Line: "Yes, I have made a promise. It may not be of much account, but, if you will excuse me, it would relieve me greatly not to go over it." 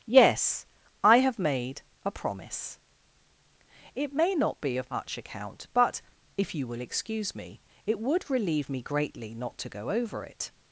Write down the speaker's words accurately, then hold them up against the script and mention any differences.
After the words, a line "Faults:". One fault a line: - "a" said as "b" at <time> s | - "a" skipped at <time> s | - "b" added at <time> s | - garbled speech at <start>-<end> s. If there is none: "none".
"Yes, I have made a promise. It may not be of much account, but, if you will excuse me, it would relieve me greatly not to go over it."
Faults:
none